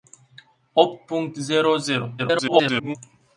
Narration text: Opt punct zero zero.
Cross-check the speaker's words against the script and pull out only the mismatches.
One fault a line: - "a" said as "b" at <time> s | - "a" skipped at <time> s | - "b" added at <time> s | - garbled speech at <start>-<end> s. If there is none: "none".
- garbled speech at 2.2-3.0 s